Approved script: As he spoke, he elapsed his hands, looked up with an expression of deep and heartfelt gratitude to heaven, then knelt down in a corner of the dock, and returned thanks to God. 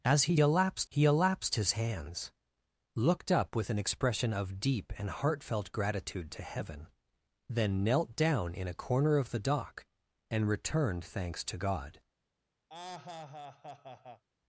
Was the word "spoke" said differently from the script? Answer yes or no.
yes